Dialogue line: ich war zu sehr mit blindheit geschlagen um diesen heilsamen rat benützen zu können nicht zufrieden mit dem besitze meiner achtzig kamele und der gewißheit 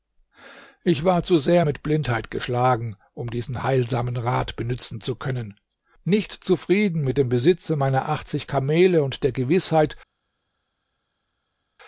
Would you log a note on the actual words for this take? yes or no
no